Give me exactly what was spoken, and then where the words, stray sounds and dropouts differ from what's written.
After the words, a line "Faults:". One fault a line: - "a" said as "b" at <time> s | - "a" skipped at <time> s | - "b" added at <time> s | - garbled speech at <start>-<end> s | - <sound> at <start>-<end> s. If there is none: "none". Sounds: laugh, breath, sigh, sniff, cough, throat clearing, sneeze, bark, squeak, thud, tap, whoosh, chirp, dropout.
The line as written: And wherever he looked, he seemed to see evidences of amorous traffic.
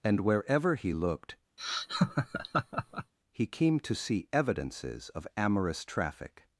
And wherever he looked, he came to see evidences of amorous traffic.
Faults:
- laugh at 1.6-3.1 s
- "seemed" said as "came" at 3.5 s